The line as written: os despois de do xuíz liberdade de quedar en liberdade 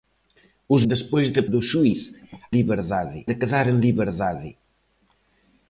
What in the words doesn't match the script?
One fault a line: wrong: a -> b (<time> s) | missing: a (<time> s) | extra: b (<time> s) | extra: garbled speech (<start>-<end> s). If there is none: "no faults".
no faults